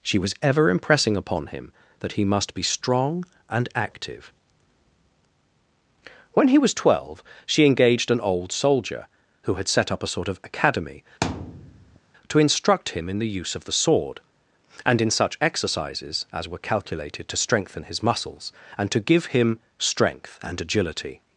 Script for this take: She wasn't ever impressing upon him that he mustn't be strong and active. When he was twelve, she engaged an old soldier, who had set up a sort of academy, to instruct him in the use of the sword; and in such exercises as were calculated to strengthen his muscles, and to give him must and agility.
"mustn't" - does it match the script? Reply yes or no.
no